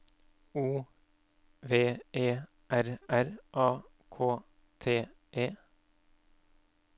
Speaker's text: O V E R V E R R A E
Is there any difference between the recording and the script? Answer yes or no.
yes